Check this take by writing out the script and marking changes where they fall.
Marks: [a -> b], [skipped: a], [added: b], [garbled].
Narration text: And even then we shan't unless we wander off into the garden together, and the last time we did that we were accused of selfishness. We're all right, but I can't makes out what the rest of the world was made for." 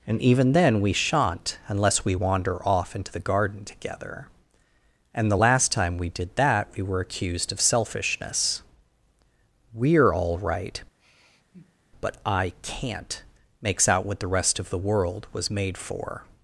And even then we shan't unless we wander off into the garden together, and the last time we did that we were accused of selfishness. We're all right, but I can't makes out what the rest of the world was made for."